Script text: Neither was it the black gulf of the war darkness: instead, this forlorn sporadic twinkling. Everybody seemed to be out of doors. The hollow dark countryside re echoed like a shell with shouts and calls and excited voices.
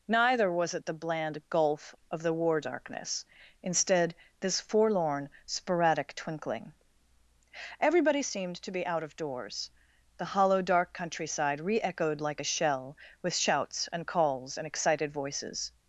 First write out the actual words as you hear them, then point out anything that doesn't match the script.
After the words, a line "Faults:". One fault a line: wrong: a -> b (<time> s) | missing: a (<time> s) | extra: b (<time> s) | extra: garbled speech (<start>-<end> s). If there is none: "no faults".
Neither was it the bland gulf of the war darkness: instead, this forlorn sporadic twinkling. Everybody seemed to be out of doors. The hollow dark countryside re echoed like a shell with shouts and calls and excited voices.
Faults:
wrong: black -> bland (0.9 s)